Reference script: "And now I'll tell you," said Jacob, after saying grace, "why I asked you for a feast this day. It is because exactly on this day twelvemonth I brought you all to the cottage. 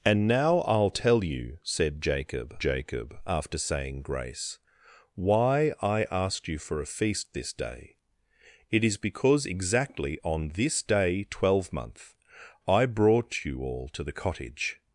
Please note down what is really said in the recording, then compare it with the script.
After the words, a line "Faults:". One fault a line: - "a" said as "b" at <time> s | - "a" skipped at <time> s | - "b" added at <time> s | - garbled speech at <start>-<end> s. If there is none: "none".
"And now I'll tell you," said Jacob Jacob, after saying grace, "why I asked you for a feast this day. It is because exactly on this day twelvemonth I brought you all to the cottage.
Faults:
- "Jacob" added at 2.6 s